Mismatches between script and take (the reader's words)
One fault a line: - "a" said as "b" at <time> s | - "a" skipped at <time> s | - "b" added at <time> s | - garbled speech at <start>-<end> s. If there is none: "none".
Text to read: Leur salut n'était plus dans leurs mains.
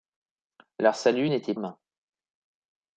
- "plus dans leurs" skipped at 1.5 s